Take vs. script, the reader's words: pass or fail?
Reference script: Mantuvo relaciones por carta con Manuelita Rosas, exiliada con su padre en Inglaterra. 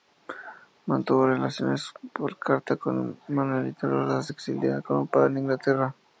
pass